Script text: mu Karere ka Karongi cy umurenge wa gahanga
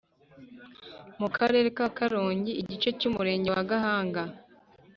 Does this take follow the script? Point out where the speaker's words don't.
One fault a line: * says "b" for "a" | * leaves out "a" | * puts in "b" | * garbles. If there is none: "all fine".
* puts in "igice"